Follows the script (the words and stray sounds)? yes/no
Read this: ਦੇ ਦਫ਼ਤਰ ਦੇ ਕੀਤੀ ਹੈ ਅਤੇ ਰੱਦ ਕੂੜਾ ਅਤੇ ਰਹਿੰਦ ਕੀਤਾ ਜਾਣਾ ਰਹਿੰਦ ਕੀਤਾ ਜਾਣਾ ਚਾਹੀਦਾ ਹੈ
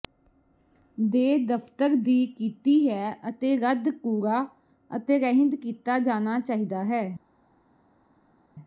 no